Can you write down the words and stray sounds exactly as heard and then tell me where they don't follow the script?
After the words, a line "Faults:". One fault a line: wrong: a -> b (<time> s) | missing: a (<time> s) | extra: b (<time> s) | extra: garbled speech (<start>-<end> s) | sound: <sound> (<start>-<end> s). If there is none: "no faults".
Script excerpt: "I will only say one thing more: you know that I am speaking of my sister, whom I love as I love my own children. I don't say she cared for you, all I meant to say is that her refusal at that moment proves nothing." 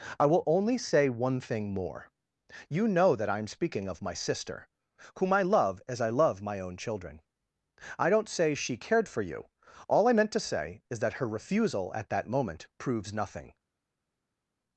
"I will only say one thing more: you know that I am speaking of my sister, whom I love as I love my own children. I don't say she cared for you, all I meant to say is that her refusal at that moment proves nothing."
Faults:
no faults